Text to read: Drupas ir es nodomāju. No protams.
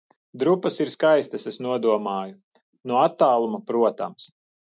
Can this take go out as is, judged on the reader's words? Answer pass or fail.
fail